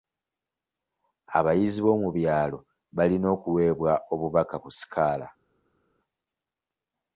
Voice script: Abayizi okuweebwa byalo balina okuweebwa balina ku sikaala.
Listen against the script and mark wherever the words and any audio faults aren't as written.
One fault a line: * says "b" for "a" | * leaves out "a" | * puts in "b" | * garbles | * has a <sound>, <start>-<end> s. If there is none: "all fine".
* says "b'omu" for "okuweebwa"
* says "obubaka" for "balina"